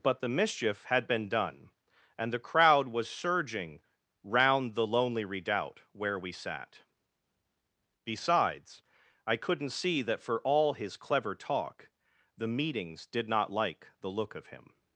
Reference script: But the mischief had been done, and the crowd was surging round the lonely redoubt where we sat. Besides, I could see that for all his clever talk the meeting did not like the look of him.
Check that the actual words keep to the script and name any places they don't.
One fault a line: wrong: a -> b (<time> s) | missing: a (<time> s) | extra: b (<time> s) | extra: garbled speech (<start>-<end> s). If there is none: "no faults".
wrong: could -> couldn't (9.4 s)
wrong: meeting -> meetings (12.5 s)